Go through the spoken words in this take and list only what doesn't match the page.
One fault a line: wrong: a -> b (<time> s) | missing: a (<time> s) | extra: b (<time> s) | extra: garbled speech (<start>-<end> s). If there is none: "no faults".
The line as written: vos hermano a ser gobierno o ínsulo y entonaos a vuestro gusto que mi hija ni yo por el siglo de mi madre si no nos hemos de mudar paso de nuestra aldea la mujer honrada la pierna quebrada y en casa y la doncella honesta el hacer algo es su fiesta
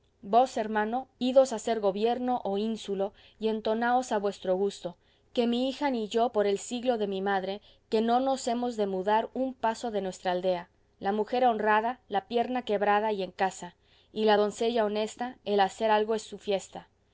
extra: idos (1.2 s)
wrong: si -> que (7.9 s)
extra: un (9.3 s)